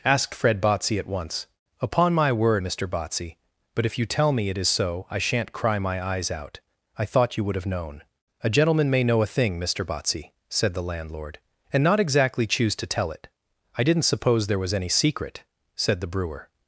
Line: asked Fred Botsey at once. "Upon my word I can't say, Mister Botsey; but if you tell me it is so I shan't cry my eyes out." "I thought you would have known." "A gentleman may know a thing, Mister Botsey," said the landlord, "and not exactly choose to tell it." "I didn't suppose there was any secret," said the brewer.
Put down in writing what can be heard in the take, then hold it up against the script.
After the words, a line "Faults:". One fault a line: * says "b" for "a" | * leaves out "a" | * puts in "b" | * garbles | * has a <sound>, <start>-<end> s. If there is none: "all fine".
asked Fred Botsey at once. "Upon my word Mister Botsey; but if you tell me it is so I shan't cry my eyes out." "I thought you would have known." "A gentleman may know a thing, Mister Botsey," said the landlord, "and not exactly choose to tell it." "I didn't suppose there was any secret," said the brewer.
Faults:
* leaves out "I can't say"